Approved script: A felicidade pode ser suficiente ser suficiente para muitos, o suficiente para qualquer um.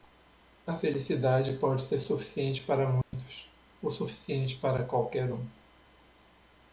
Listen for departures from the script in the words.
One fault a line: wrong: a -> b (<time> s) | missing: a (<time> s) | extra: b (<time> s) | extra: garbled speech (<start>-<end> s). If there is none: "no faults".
missing: ser suficiente (2.6 s)